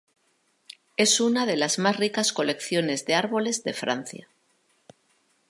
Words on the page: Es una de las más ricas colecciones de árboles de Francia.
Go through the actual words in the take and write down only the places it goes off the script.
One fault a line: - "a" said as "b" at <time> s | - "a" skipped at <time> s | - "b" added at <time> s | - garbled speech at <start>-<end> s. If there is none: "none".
none